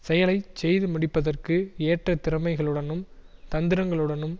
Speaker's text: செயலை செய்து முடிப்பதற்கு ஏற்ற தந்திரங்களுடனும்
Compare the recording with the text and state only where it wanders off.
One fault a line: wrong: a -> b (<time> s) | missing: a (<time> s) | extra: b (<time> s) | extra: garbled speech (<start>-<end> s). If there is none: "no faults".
extra: திறமைகளுடனும் (2.2 s)